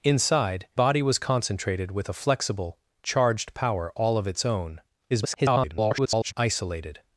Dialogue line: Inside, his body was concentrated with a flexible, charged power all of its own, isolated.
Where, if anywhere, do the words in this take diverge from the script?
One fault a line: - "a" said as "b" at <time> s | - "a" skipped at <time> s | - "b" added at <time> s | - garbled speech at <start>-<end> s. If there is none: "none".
- "his" skipped at 0.7 s
- garbled speech at 5.1-6.3 s